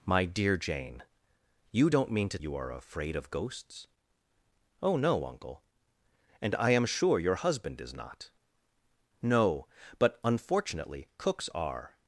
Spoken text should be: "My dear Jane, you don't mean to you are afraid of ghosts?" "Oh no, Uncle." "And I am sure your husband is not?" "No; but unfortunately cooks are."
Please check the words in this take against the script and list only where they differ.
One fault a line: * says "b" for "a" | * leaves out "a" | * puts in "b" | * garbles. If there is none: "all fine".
all fine